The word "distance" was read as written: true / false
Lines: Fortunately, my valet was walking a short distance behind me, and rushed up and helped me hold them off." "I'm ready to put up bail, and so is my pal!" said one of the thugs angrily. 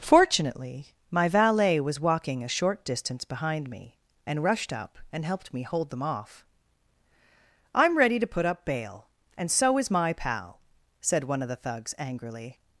true